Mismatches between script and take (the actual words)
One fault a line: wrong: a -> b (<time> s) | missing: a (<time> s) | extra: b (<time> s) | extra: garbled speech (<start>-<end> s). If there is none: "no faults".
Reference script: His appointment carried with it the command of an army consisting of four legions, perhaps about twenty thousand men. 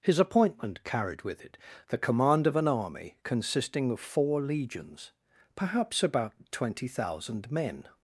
no faults